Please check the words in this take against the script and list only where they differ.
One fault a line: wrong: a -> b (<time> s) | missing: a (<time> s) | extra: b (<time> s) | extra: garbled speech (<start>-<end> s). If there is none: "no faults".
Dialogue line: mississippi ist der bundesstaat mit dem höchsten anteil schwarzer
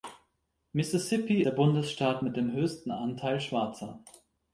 missing: ist (1.4 s)